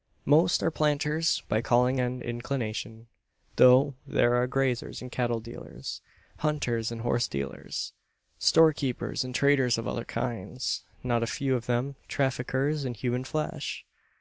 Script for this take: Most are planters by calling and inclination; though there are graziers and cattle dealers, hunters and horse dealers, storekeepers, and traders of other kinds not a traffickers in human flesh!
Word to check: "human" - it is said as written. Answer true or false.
true